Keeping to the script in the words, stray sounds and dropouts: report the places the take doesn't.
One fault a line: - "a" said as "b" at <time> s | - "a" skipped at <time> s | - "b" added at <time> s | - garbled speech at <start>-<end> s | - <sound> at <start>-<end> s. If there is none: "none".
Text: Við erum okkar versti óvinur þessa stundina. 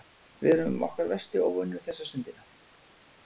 none